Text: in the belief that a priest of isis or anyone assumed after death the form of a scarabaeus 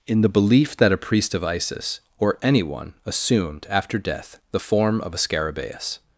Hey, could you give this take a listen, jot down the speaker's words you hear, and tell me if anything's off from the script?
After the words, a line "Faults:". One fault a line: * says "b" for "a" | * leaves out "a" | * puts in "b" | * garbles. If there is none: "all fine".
in the belief that a priest of isis or anyone assumed after death the form of a scarabaeus
Faults:
all fine